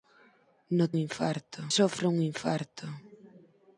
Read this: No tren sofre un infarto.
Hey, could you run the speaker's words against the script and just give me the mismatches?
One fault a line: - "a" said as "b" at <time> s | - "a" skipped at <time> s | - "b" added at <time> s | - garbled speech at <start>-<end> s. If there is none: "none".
- "tren" said as "infarto" at 1.0 s